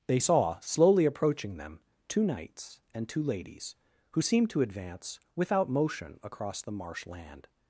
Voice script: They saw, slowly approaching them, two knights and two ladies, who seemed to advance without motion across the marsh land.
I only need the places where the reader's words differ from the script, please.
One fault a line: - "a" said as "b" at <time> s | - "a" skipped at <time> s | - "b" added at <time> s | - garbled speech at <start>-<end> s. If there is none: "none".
none